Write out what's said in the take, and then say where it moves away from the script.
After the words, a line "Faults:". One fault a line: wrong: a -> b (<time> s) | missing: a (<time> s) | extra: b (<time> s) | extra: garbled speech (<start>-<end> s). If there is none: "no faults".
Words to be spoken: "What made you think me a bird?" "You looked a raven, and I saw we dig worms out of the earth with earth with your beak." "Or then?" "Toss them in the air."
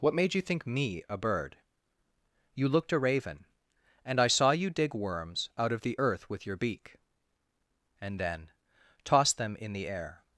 "What made you think me a bird?" "You looked a raven, and I saw you dig worms out of the earth with your beak." "And then?" "Toss them in the air."
Faults:
wrong: we -> you (4.5 s)
missing: earth with (6.5 s)
wrong: Or -> And (8.0 s)